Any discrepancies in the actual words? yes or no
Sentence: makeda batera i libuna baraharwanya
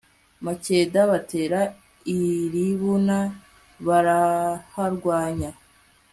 no